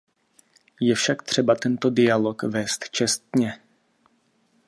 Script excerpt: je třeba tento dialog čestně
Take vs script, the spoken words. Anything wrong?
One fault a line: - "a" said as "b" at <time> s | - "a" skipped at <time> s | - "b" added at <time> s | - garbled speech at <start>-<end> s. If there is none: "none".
- "však" added at 0.9 s
- "vést" added at 2.4 s